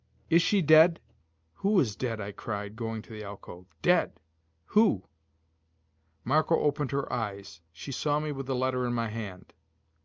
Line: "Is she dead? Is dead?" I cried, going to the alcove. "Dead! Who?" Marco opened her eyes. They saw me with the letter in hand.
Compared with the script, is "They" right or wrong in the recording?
wrong